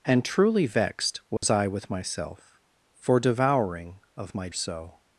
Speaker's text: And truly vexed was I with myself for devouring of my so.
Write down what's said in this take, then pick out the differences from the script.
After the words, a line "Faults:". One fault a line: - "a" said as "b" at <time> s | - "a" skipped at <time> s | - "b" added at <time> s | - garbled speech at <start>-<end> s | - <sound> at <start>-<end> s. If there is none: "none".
And truly vexed was I with myself for devouring of my so.
Faults:
- dropout at 1.4-1.4 s